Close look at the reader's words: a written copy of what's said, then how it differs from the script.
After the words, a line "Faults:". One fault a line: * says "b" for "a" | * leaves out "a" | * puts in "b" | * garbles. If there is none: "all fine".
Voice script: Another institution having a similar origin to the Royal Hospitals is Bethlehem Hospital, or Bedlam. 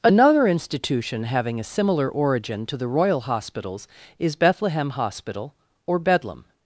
Another institution having a similar origin to the Royal Hospitals is Bethlehem Hospital, or Bedlam.
Faults:
all fine